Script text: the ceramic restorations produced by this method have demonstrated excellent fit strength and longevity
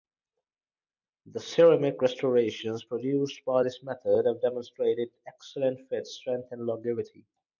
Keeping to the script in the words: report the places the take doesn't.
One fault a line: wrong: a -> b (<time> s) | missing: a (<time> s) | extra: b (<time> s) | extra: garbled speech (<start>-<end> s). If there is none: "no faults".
no faults